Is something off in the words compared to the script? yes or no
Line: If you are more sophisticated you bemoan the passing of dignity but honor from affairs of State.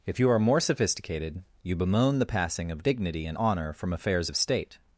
yes